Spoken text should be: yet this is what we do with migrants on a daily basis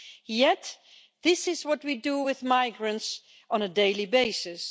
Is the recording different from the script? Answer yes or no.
no